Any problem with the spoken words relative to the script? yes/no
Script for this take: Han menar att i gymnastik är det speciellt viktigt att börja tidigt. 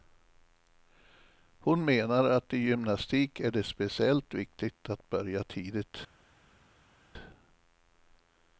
yes